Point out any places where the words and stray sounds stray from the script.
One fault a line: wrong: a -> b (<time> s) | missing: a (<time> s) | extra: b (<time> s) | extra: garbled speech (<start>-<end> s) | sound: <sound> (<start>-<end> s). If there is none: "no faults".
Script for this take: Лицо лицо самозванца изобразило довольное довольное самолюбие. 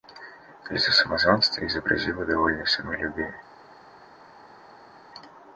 missing: лицо (0.9 s)
missing: довольное (2.6 s)